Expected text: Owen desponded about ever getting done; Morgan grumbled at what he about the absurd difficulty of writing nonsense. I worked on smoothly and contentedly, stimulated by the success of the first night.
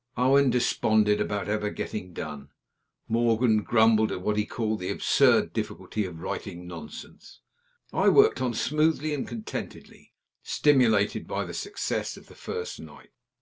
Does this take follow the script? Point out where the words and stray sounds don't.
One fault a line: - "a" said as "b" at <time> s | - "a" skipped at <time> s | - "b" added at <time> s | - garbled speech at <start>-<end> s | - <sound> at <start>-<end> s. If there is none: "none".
- "about" said as "called" at 4.5 s